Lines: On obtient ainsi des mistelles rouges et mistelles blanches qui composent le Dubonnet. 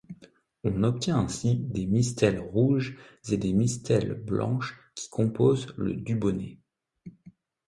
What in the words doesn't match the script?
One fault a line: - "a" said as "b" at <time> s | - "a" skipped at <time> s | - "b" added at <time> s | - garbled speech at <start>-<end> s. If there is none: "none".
- "des" added at 3.4 s